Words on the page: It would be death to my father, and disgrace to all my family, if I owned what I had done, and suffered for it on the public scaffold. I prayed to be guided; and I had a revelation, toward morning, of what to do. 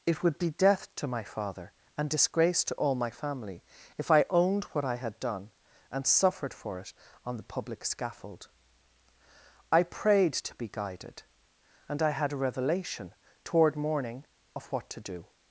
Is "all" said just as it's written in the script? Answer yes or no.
yes